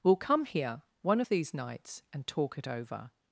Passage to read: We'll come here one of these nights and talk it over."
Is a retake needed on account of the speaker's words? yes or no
no